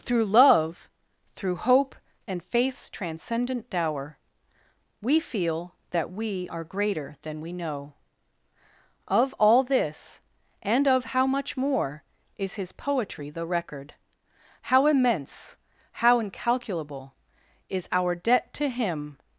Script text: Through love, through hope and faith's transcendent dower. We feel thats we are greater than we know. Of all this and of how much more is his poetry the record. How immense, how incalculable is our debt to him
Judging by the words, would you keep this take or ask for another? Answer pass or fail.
fail